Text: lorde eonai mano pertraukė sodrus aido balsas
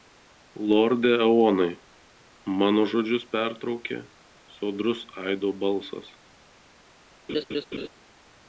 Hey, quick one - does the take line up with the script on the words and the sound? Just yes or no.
no